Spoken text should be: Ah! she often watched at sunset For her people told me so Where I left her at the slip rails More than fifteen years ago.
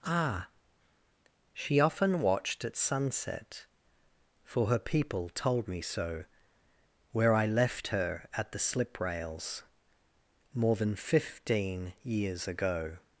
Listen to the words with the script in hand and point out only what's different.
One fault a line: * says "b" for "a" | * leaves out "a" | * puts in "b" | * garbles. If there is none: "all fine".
all fine